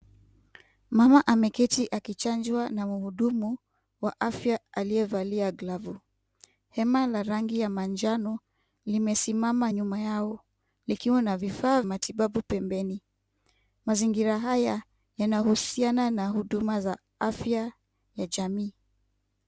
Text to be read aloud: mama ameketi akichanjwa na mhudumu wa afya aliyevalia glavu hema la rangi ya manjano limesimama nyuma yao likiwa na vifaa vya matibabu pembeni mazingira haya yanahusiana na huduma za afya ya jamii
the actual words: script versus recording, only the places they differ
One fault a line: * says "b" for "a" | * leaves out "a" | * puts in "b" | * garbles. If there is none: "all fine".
* leaves out "vya"